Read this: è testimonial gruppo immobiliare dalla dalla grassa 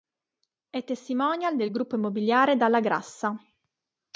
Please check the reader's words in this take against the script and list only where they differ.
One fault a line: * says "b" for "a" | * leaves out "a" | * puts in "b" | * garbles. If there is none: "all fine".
* puts in "del"
* leaves out "dalla"